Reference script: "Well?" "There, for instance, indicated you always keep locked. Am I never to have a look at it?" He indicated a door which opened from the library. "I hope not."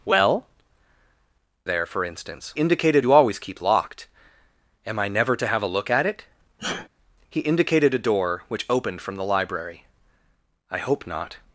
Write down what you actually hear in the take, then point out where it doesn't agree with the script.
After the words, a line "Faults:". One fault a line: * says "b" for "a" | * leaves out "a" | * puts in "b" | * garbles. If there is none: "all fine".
"Well?" "There, for instance, indicated you always keep locked. Am I never to have a look at it?" He indicated a door which opened from the library. "I hope not."
Faults:
all fine